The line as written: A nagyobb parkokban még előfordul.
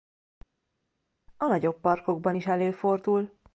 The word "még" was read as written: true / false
false